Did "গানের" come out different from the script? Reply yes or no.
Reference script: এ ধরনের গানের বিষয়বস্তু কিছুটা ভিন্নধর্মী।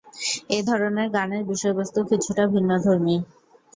no